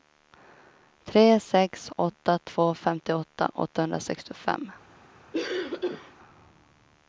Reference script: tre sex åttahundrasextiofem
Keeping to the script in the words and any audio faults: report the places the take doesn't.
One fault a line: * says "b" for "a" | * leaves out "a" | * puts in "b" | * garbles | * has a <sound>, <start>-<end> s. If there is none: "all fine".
* puts in "åtta två femtioåtta"
* has a cough, 5.3-6.1 s